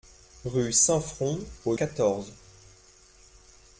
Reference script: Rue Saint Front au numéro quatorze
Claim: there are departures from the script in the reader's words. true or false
true